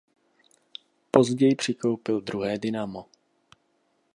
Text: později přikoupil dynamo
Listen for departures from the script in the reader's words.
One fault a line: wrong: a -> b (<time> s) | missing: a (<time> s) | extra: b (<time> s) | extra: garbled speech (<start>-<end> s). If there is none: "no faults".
extra: druhé (2.2 s)